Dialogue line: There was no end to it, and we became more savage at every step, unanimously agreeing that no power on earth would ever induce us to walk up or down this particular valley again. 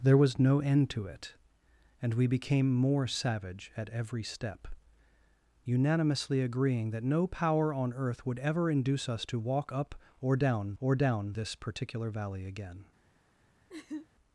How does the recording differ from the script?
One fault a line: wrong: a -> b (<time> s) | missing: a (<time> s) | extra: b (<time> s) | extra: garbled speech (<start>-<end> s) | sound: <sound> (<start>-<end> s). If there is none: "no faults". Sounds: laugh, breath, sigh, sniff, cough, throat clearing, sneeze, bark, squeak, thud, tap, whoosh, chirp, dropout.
extra: or down (10.8 s)
sound: laugh (13.7-14.1 s)